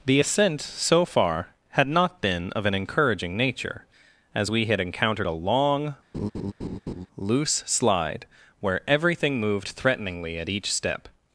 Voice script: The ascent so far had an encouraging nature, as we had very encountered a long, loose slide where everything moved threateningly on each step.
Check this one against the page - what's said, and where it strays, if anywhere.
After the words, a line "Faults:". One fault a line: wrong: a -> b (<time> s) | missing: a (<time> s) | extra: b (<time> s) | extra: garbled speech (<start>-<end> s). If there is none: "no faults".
The ascent so far had not been of an encouraging nature, as we had encountered a long, loose slide where everything moved threateningly at each step.
Faults:
extra: not been of (1.9 s)
missing: very (4.8 s)
wrong: on -> at (10.4 s)